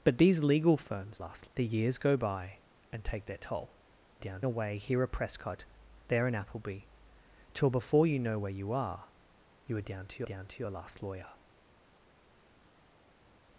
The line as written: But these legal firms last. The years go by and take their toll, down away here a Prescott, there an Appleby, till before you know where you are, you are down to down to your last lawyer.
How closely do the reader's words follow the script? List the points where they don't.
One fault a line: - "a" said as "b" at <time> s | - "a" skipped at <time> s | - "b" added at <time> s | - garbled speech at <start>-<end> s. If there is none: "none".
none